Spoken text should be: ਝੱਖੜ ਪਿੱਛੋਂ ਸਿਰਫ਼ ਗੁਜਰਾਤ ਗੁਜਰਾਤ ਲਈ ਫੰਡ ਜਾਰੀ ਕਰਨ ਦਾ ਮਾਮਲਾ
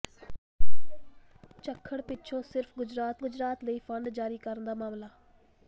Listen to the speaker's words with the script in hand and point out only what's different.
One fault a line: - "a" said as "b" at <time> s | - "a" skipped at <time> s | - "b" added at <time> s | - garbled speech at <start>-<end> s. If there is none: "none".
none